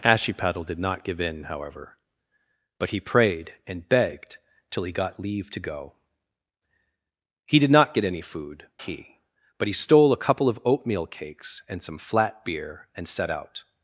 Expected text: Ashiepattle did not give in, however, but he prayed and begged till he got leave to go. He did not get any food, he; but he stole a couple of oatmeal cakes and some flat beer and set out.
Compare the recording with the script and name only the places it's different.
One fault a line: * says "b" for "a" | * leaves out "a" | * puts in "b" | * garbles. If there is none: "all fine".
all fine